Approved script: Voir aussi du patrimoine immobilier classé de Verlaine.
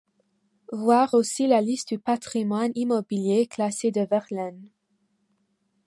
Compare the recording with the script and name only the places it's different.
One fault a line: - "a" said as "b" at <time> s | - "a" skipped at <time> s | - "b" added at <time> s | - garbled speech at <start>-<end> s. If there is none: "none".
- "la liste" added at 1.5 s